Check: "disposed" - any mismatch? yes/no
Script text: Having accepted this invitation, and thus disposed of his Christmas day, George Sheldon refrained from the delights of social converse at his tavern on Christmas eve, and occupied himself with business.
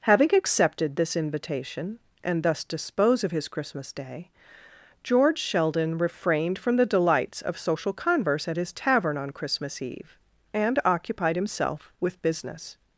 yes